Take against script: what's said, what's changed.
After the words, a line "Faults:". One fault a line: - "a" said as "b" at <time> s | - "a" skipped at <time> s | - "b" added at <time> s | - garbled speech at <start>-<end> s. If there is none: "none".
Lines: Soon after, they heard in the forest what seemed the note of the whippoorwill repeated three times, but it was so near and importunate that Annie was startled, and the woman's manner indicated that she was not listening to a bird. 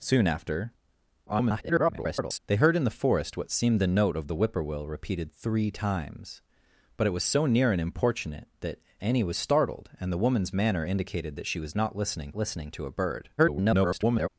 Soon after, [garbled] they heard in the forest what seemed the note of the whippoorwill repeated three times, but it was so near and importunate that Annie was startled, and the woman's manner indicated that she was not listening listening to a bird. [garbled]
Faults:
- garbled speech at 1.3-2.4 s
- "listening" added at 12.3 s
- garbled speech at 13.4-14.3 s